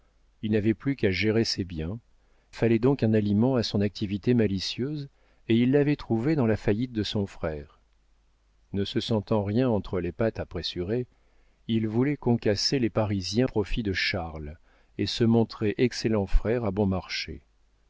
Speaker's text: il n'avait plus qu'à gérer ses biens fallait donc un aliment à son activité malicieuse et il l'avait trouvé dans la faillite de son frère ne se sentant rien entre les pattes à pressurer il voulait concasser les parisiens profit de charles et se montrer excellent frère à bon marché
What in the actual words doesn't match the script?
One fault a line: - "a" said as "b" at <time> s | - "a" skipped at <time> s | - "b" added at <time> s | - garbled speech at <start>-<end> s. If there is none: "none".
none